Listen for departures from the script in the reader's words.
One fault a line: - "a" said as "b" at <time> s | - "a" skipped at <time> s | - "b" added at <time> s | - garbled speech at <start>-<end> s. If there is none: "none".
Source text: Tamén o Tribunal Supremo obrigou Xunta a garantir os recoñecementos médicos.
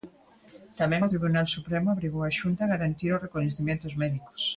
- "a" added at 2.2 s